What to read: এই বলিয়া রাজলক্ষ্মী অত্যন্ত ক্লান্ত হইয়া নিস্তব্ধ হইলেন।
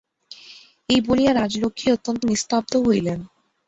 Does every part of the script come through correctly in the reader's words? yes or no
no